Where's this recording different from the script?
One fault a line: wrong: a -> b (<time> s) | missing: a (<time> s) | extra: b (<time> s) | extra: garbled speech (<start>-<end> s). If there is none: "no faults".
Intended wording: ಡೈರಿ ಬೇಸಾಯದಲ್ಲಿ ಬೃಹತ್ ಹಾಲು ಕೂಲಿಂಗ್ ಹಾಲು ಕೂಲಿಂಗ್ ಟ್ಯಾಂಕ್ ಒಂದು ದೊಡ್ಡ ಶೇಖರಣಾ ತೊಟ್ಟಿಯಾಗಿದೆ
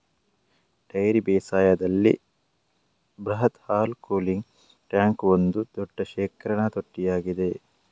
missing: ಹಾಲು ಕೂಲಿಂಗ್ (4.5 s)